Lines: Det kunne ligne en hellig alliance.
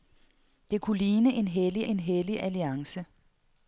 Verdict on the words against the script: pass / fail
fail